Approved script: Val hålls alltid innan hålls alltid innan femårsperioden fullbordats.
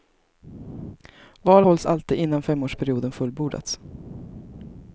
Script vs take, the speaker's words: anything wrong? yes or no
yes